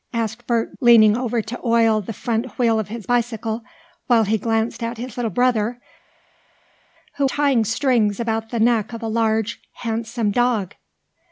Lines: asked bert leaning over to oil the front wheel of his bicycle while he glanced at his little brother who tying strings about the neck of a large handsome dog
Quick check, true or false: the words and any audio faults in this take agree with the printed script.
true